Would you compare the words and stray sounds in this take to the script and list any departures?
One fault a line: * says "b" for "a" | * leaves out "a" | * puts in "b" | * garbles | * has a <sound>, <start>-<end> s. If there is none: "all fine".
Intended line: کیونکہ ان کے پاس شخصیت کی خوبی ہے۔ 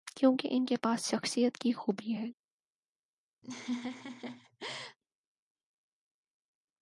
* has a laugh, 3.4-5.0 s